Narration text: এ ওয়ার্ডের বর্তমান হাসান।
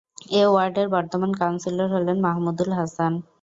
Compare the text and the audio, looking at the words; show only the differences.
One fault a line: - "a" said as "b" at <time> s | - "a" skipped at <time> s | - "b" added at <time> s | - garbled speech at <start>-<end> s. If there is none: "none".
- "কাউন্সিলর হলেন মাহমুদুল" added at 1.4 s